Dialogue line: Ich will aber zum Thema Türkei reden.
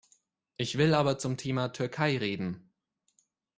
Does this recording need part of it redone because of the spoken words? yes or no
no